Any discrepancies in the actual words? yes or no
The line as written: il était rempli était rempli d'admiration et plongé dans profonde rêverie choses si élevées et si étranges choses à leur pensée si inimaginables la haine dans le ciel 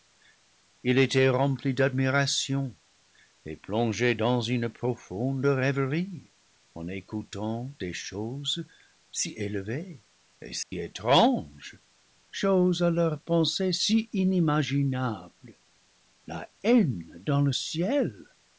yes